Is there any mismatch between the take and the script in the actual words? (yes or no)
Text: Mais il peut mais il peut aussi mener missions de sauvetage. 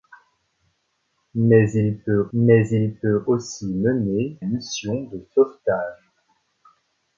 no